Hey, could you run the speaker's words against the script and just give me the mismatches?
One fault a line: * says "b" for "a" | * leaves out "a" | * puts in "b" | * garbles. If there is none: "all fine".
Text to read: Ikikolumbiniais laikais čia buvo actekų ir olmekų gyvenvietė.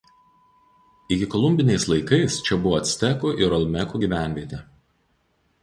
all fine